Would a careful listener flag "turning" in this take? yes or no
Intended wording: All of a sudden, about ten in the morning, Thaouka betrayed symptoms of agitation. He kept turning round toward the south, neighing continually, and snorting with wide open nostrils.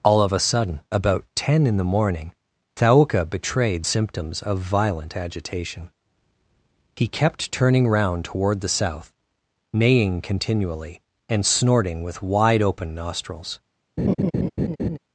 no